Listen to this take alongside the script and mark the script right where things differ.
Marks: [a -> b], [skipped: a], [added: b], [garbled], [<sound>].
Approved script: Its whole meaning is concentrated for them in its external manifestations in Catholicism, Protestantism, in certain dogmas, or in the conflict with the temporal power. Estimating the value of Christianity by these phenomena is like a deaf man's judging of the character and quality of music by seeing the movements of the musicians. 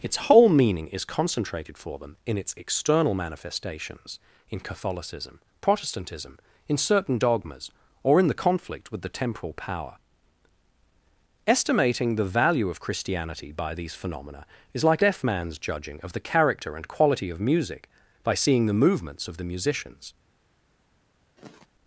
Its whole meaning is concentrated for them in its external manifestations in Catholicism, Protestantism, in certain dogmas, or in the conflict with the temporal power. Estimating the value of Christianity by these phenomena is like [skipped: a] deaf man's judging of the character and quality of music by seeing the movements of the musicians. [sigh]